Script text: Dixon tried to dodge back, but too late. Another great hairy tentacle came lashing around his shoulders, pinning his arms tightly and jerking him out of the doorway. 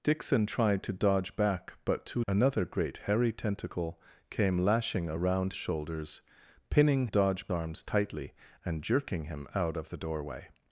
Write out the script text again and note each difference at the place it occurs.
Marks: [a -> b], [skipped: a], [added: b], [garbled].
Dixon tried to dodge back, but too [skipped: late.] Another great hairy tentacle came lashing around [skipped: his] shoulders, pinning [his -> dodge] arms tightly and jerking him out of the doorway.